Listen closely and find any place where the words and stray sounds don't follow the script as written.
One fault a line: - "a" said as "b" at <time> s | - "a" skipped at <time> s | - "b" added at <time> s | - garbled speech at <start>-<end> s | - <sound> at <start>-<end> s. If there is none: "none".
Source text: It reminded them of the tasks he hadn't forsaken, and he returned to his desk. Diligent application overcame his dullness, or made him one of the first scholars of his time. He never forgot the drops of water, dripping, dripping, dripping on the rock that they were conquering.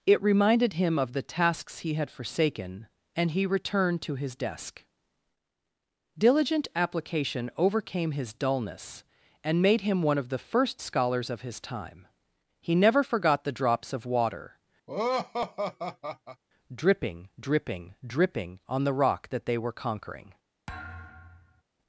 - "them" said as "him" at 0.7 s
- "hadn't" said as "had" at 1.9 s
- "or" said as "and" at 9.4 s
- laugh at 14.9-16.4 s
- thud at 20.7-21.6 s